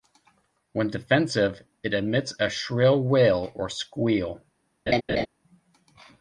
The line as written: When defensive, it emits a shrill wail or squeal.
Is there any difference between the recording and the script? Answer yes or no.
no